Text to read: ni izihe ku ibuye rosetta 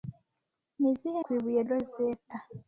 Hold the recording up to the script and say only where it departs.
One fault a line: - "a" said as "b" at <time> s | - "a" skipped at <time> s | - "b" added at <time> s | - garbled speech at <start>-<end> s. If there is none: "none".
none